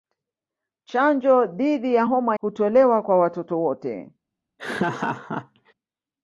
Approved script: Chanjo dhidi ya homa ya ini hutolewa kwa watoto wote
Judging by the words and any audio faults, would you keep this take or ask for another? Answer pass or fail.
fail